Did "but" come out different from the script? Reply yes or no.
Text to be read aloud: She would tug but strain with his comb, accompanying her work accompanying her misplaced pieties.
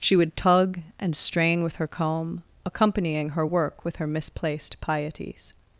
yes